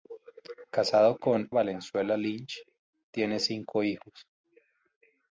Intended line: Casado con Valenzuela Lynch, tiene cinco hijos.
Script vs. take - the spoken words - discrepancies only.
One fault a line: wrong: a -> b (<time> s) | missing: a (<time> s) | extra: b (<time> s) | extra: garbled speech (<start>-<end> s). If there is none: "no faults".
no faults